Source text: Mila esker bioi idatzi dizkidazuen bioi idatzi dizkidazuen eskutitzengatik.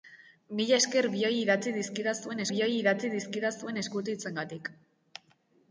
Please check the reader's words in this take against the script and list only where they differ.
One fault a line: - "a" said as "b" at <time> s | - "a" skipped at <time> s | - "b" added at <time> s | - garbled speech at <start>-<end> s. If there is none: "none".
none